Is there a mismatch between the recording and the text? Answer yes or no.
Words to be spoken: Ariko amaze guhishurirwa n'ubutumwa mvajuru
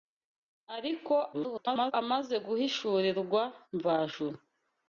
yes